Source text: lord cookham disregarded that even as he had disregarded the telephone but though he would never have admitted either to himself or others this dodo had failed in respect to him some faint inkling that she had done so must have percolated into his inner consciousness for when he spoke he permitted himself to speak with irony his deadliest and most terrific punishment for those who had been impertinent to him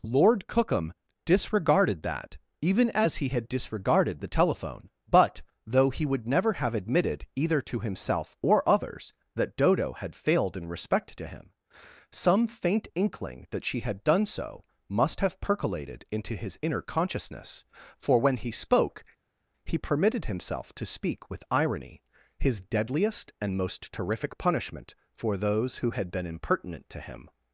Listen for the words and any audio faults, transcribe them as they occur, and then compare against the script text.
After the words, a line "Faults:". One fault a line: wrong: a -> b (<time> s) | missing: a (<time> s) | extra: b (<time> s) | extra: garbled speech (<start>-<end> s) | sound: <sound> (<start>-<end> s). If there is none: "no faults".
lord cookham disregarded that even as he had disregarded the telephone but though he would never have admitted either to himself or others that dodo had failed in respect to him some faint inkling that she had done so must have percolated into his inner consciousness for when he spoke he permitted himself to speak with irony his deadliest and most terrific punishment for those who had been impertinent to him
Faults:
wrong: this -> that (9.3 s)